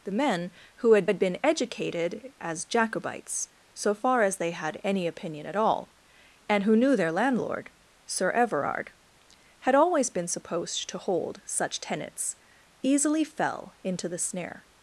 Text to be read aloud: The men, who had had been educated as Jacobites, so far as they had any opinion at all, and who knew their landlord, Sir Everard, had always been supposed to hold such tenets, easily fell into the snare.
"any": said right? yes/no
yes